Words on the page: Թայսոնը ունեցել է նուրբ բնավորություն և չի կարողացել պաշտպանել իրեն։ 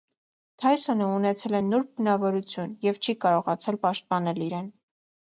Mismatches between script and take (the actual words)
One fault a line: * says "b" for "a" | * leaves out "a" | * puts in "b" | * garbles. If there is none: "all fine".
all fine